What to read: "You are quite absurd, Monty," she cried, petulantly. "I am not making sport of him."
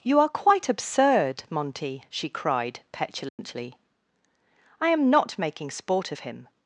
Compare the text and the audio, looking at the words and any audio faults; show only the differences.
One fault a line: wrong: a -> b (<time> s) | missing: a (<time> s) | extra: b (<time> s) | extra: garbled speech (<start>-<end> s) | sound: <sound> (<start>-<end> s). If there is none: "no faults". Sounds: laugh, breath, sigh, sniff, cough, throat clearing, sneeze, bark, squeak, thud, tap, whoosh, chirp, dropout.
sound: dropout (3.3-3.4 s)